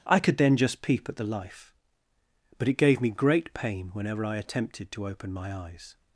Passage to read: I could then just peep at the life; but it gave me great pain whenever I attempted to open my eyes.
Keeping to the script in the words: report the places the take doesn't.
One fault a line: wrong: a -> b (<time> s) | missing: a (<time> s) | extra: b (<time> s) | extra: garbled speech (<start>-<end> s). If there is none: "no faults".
no faults